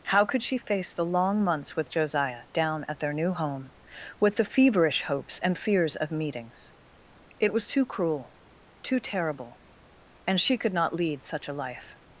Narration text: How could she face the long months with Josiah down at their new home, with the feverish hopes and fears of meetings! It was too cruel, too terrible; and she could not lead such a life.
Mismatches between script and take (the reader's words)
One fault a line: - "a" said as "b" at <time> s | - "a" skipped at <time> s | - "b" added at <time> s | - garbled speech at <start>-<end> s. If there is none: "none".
none